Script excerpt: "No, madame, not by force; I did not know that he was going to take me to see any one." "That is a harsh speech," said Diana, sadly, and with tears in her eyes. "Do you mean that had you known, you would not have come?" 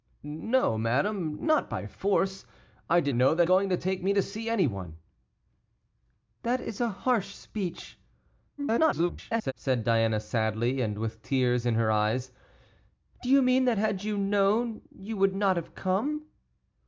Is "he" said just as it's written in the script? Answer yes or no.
no